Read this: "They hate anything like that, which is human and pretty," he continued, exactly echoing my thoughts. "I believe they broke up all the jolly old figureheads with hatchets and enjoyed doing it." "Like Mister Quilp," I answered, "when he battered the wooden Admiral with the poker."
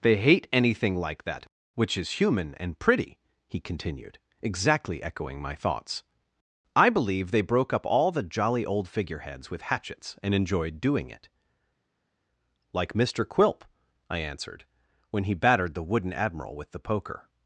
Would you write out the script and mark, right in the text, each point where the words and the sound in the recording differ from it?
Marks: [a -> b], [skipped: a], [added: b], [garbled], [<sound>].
"They hate anything like that, which is human and pretty," he continued, exactly echoing my thoughts. "I believe they broke up all the jolly old figureheads with hatchets and enjoyed doing it." "Like Mister Quilp," I answered, "when he battered the wooden Admiral with the poker."